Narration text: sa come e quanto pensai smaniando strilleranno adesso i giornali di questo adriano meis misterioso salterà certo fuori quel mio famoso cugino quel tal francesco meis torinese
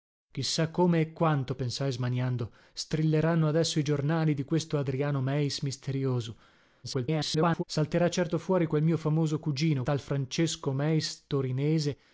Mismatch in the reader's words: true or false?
true